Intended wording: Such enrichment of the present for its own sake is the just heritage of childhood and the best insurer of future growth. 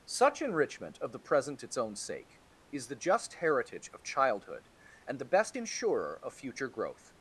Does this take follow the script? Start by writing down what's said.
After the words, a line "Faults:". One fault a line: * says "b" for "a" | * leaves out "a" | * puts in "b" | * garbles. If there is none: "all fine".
Such enrichment of the present its own sake is the just heritage of childhood and the best insurer of future growth.
Faults:
* leaves out "for"